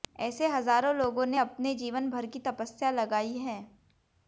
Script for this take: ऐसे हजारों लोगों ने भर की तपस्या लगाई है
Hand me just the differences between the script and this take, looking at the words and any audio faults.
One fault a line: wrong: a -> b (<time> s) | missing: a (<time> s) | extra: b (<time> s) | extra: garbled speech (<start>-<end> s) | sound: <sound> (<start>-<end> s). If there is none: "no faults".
extra: अपने जीवन (1.4 s)